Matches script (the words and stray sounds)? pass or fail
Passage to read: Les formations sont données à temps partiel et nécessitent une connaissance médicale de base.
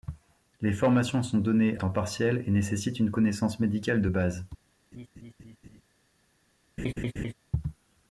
fail